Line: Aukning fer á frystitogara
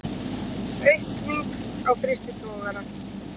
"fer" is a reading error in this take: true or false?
true